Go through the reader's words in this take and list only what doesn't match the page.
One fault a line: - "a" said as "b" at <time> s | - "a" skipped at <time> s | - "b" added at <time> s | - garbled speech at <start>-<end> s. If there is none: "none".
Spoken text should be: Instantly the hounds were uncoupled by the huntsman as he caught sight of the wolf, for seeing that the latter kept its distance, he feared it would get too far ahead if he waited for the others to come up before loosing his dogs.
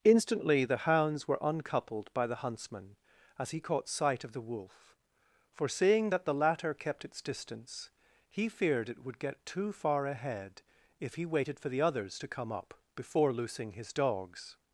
none